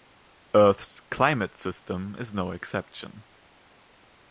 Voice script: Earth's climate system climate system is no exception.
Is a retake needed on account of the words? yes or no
yes